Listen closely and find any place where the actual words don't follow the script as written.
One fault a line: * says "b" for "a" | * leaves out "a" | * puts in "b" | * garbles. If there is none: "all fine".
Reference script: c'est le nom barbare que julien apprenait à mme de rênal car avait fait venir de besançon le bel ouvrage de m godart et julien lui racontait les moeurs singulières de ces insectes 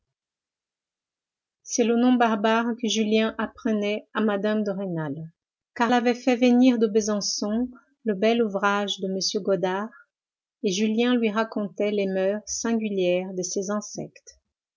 all fine